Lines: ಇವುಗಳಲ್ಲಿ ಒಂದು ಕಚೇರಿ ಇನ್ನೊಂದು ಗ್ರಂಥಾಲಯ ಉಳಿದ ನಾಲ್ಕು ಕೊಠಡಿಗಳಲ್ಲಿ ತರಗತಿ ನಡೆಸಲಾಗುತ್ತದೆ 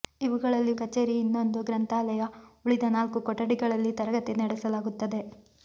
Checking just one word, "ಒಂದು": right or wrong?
wrong